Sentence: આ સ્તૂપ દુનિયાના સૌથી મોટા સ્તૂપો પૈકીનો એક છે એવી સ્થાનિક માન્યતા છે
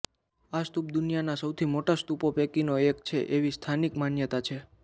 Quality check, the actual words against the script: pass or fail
pass